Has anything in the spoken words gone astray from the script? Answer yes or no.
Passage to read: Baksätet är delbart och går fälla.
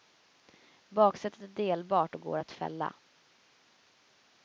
yes